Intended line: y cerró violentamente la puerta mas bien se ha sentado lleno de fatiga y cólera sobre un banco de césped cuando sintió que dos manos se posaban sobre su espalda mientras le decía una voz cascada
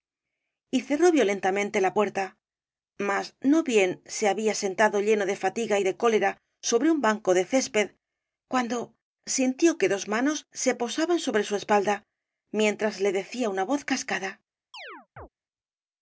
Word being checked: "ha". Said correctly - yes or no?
no